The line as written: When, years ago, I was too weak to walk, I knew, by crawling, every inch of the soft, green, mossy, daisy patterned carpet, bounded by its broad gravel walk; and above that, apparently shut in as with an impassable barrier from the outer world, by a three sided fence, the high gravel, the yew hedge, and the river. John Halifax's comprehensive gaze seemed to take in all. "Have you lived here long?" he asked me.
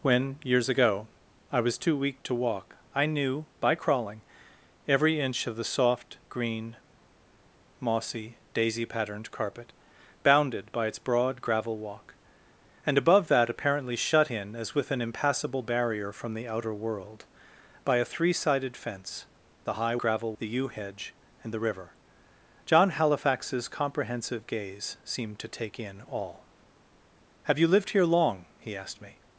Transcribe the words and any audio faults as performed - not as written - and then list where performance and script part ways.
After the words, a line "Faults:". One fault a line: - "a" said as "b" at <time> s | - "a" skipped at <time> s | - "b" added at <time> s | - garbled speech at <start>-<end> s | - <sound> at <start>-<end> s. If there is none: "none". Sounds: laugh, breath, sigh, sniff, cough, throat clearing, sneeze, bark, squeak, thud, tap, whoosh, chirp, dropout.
When, years ago, I was too weak to walk, I knew, by crawling, every inch of the soft, green, mossy, daisy patterned carpet, bounded by its broad gravel walk; and above that, apparently shut in as with an impassable barrier from the outer world, by a three sided fence, the high gravel, the yew hedge, and the river. John Halifax's comprehensive gaze seemed to take in all. "Have you lived here long?" he asked me.
Faults:
none